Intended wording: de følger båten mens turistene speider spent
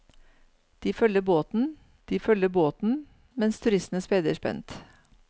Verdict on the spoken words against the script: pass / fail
fail